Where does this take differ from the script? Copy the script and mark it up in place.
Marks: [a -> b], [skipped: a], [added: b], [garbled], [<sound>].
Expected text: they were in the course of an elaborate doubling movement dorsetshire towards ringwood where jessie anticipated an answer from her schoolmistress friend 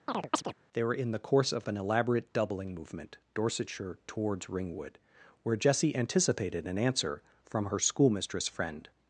[chirp] they were in the course of an elaborate doubling movement dorsetshire towards ringwood where jessie anticipated an answer from her schoolmistress friend